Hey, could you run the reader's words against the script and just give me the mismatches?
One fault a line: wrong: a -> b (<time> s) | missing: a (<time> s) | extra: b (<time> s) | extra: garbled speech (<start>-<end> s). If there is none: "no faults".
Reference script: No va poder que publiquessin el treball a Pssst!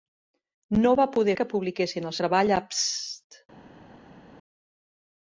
no faults